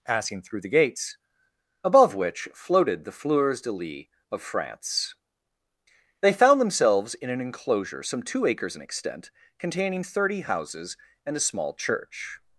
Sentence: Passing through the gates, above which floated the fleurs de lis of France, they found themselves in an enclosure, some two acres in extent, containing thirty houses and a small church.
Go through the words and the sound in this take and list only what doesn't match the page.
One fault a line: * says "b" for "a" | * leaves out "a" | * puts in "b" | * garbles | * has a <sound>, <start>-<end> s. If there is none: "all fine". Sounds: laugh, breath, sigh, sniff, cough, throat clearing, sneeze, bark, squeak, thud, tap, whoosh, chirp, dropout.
all fine